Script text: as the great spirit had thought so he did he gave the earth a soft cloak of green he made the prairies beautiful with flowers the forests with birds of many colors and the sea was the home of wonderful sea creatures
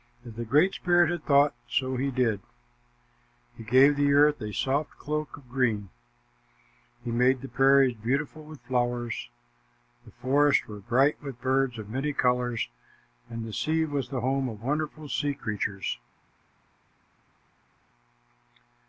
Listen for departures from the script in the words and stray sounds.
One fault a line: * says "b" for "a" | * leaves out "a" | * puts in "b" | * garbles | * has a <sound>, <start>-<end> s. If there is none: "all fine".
* puts in "were bright"